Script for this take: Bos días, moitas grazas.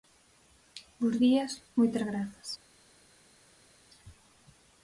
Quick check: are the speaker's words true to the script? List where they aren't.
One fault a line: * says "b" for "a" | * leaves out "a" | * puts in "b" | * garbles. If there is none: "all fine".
all fine